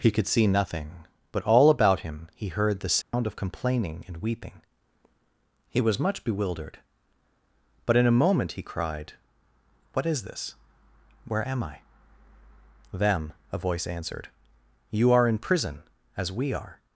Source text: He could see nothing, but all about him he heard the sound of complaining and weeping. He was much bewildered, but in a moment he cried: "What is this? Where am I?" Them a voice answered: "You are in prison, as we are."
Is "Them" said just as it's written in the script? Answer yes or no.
yes